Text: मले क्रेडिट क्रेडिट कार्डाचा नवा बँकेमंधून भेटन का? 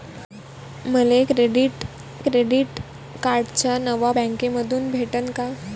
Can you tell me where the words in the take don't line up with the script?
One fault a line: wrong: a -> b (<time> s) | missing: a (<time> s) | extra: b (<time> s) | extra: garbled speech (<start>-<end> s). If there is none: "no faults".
no faults